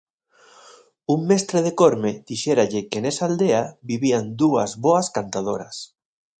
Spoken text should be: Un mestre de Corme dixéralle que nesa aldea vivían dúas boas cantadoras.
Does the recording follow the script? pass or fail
pass